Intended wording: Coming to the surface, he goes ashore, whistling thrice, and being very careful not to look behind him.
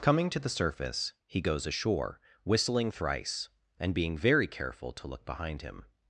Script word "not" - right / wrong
wrong